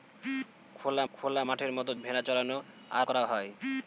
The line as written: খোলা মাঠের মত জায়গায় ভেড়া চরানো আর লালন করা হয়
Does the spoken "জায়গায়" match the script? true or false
false